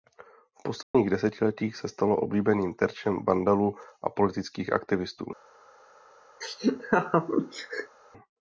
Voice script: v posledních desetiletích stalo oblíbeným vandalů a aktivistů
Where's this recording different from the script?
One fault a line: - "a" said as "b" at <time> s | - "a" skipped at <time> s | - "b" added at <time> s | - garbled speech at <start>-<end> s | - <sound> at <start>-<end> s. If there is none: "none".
- dropout at 0.8-0.9 s
- "se" added at 1.8 s
- "terčem" added at 2.7 s
- "politických" added at 4.1 s
- laugh at 6.4-8.0 s